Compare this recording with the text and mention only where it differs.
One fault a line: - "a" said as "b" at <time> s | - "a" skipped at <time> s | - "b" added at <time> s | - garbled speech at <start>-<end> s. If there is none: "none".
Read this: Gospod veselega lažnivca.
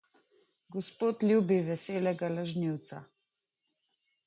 - "ljubi" added at 1.3 s